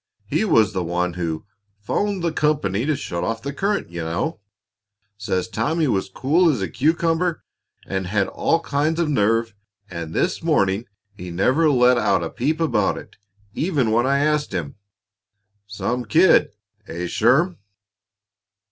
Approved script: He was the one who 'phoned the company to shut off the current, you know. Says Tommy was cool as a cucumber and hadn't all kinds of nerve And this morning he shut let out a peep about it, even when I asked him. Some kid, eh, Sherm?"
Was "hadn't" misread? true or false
true